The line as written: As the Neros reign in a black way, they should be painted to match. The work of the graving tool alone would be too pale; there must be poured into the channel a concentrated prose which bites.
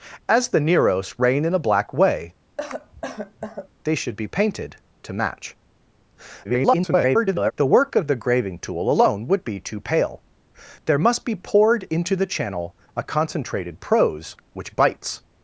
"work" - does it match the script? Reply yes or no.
yes